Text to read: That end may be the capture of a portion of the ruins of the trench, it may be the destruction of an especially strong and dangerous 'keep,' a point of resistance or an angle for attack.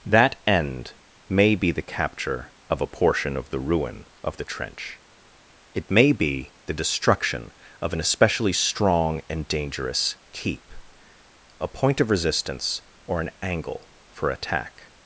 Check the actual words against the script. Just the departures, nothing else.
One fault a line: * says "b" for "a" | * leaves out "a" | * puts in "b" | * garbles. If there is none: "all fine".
* says "ruin" for "ruins"